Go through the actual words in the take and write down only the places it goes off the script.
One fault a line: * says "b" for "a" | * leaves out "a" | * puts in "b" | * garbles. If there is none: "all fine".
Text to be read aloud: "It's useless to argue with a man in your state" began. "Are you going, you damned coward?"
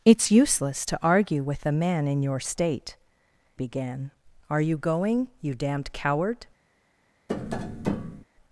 all fine